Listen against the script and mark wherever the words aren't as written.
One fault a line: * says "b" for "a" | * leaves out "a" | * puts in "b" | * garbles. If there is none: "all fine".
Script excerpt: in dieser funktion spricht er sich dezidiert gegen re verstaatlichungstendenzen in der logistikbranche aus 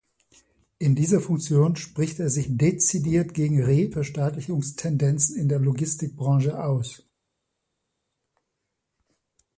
all fine